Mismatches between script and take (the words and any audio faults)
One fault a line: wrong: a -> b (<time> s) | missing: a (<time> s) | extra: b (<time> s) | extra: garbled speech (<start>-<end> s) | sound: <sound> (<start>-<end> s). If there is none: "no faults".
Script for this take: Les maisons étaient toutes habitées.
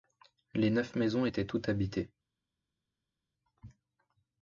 extra: neuf (0.7 s)